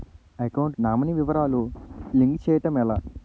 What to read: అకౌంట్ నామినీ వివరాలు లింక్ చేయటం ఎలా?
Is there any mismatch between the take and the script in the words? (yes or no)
no